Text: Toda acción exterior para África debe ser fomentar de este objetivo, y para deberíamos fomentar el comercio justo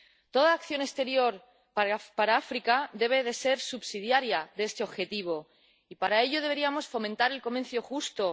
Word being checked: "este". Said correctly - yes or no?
yes